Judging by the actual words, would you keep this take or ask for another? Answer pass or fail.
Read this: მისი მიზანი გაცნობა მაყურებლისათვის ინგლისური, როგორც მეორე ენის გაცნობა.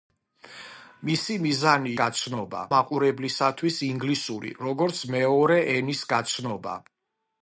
pass